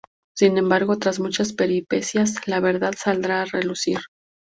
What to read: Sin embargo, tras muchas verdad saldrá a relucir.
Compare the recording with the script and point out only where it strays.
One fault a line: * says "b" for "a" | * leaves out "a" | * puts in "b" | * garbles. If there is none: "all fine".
* puts in "peripecias la"